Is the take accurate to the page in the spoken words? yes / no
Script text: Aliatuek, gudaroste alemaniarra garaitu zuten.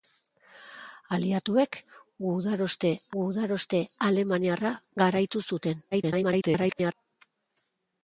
no